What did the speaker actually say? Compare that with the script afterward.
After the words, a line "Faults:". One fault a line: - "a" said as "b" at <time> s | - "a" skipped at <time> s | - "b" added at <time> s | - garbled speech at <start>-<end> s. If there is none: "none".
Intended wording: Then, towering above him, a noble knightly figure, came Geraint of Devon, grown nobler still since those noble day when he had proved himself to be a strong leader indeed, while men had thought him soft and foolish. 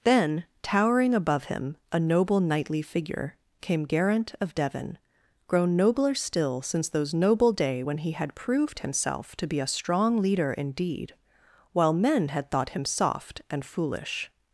Then, towering above him, a noble knightly figure, came Geraint of Devon, grown nobler still since those noble day when he had proved himself to be a strong leader indeed, while men had thought him soft and foolish.
Faults:
none